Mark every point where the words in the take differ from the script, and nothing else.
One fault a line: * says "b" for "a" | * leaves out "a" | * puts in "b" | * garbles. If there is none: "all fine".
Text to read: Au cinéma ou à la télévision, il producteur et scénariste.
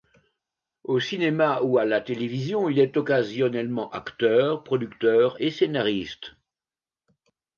* puts in "est occasionnellement acteur"